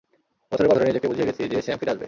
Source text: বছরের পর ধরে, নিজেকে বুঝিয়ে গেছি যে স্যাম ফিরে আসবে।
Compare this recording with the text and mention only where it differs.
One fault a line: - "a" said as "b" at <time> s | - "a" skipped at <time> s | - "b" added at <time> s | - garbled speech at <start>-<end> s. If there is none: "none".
none